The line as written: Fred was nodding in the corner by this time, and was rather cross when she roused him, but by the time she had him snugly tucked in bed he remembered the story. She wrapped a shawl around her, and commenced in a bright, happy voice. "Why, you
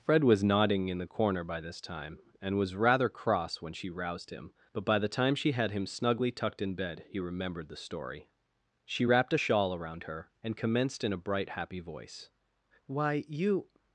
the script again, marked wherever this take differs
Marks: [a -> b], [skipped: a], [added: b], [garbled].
Fred was nodding in the corner by this time, and was rather cross when she roused him, but by the time she had him snugly tucked in bed he remembered the story. She wrapped a shawl around her, and commenced in a bright, happy voice. "Why, you